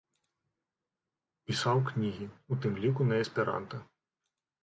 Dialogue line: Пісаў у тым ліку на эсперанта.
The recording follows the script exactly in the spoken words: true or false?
false